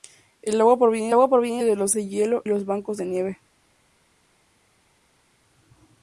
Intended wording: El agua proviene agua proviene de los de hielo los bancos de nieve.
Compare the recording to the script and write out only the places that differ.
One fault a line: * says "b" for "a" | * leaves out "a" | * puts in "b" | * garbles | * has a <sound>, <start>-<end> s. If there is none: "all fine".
all fine